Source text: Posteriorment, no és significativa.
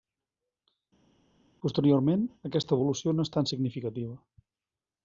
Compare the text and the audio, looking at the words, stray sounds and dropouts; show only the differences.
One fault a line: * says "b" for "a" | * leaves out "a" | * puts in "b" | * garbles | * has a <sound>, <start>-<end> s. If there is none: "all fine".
* puts in "aquesta evolució"
* puts in "tan"